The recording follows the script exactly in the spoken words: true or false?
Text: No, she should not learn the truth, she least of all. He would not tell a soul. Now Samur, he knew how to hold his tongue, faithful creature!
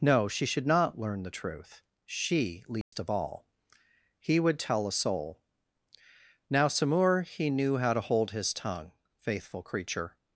false